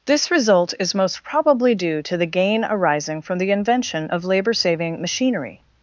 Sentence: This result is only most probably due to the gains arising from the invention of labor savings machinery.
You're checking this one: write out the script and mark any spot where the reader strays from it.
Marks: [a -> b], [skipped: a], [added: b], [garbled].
This result is [skipped: only] most probably due to the [gains -> gain] arising from the invention of labor [savings -> saving] machinery.